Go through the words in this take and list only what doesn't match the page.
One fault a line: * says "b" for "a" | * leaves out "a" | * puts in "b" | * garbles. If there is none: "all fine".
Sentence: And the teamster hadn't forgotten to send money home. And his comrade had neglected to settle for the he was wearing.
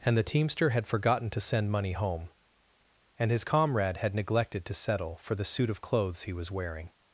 * says "had" for "hadn't"
* puts in "suit of clothes"